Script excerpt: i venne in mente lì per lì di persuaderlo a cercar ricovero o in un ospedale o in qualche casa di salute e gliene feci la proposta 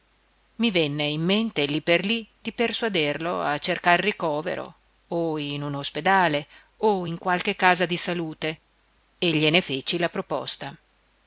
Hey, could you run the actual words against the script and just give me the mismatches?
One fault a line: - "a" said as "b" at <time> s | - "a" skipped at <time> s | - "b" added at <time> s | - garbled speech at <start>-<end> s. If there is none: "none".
none